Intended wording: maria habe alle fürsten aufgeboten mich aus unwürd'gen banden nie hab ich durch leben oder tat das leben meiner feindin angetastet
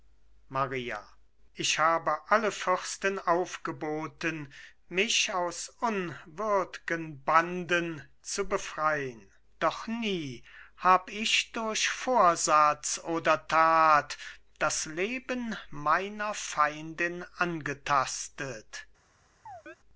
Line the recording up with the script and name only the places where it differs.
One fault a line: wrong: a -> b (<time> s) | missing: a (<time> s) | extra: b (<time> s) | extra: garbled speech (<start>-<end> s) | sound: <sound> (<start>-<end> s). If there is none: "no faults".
extra: ich (1.5 s)
extra: zu befrein doch (8.2 s)
wrong: leben -> vorsatz (11.9 s)
sound: chirp (19.5-19.8 s)